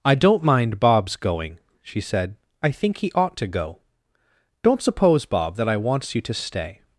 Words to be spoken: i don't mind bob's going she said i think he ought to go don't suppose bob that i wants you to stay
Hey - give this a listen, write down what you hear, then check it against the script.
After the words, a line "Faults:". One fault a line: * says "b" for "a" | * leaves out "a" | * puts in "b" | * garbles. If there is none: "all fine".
i don't mind bob's going she said i think he ought to go don't suppose bob that i wants you to stay
Faults:
all fine